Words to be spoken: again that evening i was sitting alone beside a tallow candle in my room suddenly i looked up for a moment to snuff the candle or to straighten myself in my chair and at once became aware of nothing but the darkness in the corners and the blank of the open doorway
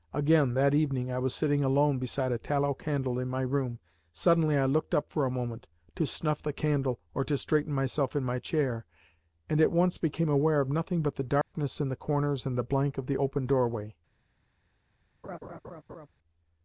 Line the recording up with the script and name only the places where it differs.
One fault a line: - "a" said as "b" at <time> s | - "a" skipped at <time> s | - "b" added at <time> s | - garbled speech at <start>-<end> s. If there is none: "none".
none